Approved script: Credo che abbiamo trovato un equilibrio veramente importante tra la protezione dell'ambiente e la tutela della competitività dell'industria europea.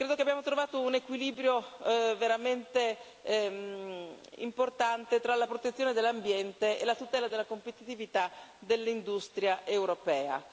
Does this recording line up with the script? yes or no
yes